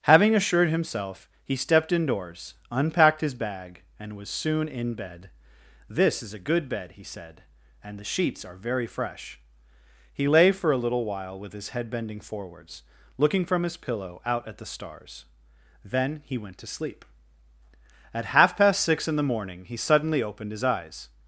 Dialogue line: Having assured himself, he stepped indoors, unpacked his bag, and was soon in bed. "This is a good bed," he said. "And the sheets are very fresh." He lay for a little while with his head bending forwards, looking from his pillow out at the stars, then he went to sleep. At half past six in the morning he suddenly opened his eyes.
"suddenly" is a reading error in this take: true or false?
false